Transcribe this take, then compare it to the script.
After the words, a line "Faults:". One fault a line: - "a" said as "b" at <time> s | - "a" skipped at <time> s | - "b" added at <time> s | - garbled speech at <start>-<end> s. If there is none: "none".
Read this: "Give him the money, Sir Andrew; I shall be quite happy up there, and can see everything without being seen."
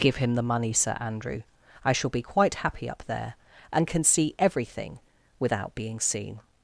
"Give him the money, Sir Andrew; I shall be quite happy up there, and can see everything without being seen."
Faults:
none